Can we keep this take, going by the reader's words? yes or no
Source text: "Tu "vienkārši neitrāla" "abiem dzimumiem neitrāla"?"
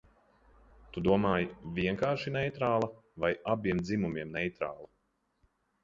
no